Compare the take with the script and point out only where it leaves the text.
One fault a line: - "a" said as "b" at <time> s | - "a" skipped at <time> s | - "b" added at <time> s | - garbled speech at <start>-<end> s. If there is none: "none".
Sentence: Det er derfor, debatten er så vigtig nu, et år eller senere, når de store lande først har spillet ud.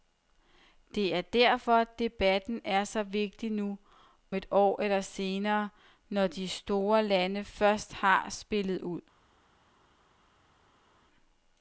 none